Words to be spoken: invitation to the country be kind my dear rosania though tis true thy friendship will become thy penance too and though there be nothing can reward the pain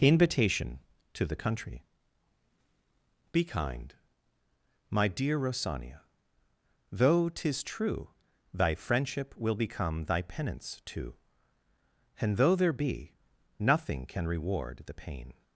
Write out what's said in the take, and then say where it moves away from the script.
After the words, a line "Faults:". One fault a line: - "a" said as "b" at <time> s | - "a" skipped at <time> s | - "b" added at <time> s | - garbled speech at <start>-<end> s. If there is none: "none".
invitation to the country be kind my dear rosania though tis true thy friendship will become thy penance too and though there be nothing can reward the pain
Faults:
none